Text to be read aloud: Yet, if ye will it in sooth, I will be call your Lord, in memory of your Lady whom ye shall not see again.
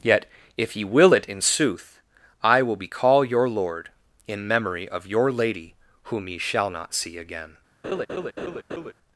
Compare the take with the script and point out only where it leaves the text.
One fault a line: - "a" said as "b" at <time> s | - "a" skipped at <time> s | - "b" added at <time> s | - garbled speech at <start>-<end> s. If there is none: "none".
none